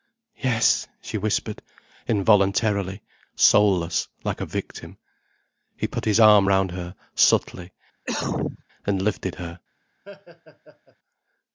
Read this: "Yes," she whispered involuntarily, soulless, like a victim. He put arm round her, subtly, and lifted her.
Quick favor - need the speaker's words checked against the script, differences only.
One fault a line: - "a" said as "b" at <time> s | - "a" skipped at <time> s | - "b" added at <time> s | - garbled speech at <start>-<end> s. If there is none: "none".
- "his" added at 6.0 s